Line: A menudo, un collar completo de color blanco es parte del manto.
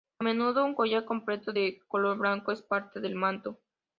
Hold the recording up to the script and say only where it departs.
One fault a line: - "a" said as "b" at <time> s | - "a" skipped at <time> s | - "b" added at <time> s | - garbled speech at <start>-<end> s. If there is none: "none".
none